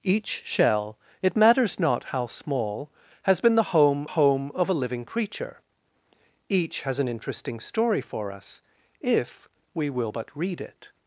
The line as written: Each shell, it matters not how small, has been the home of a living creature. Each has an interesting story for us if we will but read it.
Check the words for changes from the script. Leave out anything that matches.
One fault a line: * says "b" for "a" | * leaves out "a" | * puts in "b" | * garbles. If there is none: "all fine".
* puts in "home"